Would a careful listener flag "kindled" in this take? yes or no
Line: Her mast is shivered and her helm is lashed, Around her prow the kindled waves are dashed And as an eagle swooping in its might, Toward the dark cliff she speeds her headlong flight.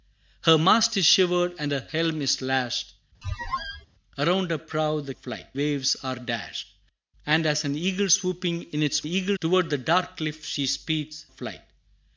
yes